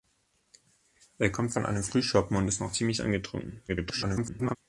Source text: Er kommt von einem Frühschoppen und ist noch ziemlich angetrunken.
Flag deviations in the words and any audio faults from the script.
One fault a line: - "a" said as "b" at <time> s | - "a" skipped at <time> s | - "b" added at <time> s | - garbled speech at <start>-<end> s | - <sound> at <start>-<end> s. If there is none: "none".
- garbled speech at 3.7-4.6 s